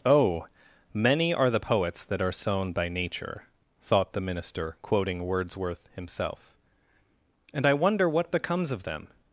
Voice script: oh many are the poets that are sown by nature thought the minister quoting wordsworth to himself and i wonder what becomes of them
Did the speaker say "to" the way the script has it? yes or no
no